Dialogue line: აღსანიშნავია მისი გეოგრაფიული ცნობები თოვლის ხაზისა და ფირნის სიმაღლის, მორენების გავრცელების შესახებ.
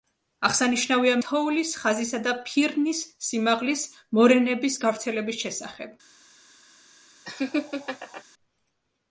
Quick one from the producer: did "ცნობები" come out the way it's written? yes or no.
no